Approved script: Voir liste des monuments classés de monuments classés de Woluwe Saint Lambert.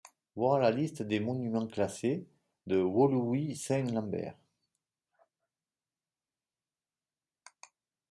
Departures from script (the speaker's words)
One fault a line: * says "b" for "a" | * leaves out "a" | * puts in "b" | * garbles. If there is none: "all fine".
* puts in "la"
* leaves out "monuments classés de"